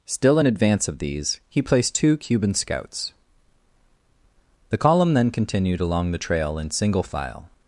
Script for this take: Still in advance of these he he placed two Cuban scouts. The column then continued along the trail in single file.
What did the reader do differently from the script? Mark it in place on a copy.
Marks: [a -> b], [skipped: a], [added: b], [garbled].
Still in advance of these he [skipped: he] placed two Cuban scouts. The column then continued along the trail in single file.